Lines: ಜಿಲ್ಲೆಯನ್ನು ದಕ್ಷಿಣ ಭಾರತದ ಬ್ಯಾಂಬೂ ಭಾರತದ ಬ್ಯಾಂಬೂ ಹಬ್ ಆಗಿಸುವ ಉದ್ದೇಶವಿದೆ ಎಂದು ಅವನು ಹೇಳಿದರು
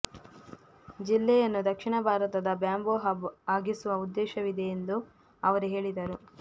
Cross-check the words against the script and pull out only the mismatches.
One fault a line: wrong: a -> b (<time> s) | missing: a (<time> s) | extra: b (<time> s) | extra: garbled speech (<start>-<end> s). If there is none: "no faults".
missing: ಭಾರತದ ಬ್ಯಾಂಬೂ (3.0 s)
wrong: ಅವನು -> ಅವರು (5.4 s)